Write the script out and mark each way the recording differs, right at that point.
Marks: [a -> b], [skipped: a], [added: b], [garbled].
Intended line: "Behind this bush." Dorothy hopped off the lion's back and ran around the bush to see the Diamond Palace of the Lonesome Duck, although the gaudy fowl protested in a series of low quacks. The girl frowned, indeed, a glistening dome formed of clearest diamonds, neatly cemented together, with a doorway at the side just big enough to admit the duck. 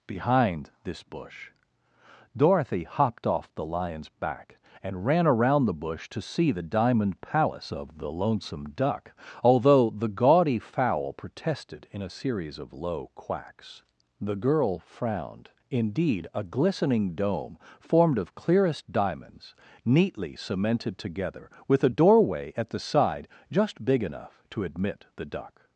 "Behind this bush." Dorothy hopped off the lion's back and ran around the bush to see the Diamond Palace of the Lonesome Duck, although the gaudy fowl protested in a series of low quacks. The girl frowned, indeed, a glistening dome formed of clearest diamonds, neatly cemented together, with a doorway at the side just big enough to admit the duck.